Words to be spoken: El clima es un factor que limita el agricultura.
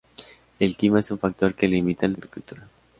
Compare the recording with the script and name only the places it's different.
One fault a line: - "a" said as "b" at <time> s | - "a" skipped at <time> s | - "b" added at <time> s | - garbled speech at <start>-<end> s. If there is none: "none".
none